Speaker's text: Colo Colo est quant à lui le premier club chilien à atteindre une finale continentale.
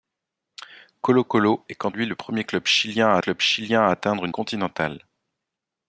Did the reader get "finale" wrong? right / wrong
wrong